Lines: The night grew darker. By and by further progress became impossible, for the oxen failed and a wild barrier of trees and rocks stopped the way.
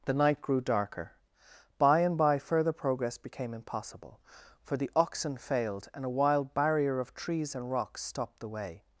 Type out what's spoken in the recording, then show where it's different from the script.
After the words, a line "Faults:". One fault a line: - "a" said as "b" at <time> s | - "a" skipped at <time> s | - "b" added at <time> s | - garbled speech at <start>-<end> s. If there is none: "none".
The night grew darker. By and by further progress became impossible, for the oxen failed and a wild barrier of trees and rocks stopped the way.
Faults:
none